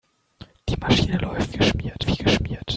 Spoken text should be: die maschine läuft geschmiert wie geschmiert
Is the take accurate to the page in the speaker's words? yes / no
yes